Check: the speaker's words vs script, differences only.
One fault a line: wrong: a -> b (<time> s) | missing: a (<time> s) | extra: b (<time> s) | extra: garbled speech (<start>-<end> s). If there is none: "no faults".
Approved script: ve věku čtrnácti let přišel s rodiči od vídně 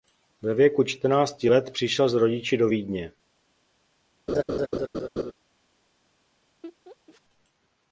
wrong: od -> do (2.6 s)